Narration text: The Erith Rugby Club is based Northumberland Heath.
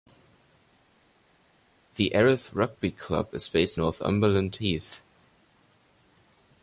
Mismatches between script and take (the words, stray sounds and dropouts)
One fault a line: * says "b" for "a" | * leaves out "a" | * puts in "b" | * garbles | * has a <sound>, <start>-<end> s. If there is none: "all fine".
all fine